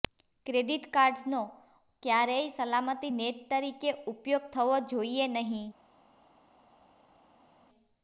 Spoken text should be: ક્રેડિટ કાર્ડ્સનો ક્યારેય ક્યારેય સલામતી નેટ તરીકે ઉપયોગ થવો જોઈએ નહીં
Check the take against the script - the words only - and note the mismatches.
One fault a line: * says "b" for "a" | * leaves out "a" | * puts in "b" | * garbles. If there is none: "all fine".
* leaves out "ક્યારેય"